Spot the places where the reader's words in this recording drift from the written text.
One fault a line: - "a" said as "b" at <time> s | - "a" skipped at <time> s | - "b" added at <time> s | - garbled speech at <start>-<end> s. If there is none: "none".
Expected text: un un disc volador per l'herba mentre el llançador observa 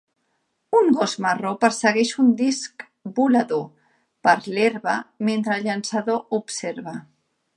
- "gos marró persegueix" added at 1.0 s